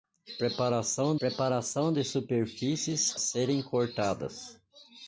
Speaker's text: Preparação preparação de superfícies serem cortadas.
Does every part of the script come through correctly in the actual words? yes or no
yes